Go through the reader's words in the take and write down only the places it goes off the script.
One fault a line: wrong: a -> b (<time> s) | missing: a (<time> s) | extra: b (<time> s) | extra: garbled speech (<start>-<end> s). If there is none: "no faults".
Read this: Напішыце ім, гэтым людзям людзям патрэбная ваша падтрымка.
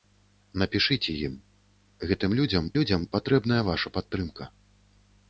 no faults